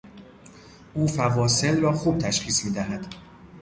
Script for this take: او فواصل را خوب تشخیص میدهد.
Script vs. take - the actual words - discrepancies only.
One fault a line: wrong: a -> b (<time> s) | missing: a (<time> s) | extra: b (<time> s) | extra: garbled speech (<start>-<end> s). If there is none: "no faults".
no faults